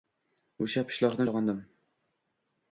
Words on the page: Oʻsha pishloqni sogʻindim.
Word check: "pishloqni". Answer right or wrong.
right